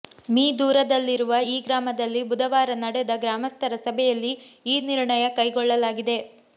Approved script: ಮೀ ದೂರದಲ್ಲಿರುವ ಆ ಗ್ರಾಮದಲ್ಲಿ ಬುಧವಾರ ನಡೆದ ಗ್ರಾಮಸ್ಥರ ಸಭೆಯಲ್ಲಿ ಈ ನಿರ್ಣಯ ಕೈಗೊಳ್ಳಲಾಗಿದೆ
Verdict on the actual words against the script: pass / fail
fail